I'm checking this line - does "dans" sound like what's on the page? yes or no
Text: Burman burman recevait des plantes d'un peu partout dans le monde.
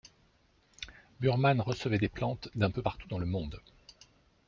yes